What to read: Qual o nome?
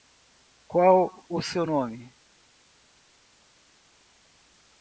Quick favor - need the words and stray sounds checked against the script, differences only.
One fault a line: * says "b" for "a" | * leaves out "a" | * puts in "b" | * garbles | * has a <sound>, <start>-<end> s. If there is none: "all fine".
* puts in "seu"